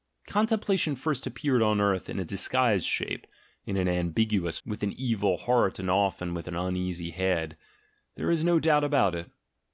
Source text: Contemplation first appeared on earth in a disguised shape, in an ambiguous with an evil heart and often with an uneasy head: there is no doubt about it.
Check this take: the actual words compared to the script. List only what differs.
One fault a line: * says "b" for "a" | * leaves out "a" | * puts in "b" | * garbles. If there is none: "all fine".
all fine